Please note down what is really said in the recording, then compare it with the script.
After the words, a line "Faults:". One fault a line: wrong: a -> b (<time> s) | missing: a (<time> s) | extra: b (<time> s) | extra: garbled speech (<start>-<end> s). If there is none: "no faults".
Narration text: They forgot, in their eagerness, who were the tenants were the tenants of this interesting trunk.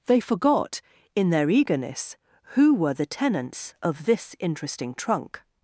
They forgot, in their eagerness, who were the tenants of this interesting trunk.
Faults:
missing: were the tenants (3.7 s)